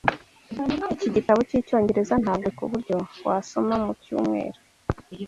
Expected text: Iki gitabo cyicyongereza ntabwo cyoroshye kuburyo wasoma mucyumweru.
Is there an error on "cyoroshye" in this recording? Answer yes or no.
yes